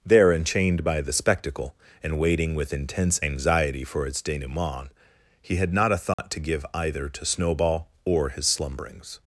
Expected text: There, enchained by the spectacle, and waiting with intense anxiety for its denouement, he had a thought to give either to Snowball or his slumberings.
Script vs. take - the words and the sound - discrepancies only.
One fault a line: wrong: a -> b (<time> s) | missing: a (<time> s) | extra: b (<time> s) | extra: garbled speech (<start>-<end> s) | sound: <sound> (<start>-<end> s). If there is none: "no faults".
extra: not (5.7 s)
sound: dropout (6.1-6.2 s)